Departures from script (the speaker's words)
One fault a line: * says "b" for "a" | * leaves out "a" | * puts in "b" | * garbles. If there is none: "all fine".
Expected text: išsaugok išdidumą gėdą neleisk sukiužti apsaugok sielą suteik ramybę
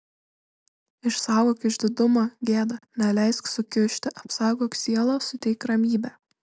all fine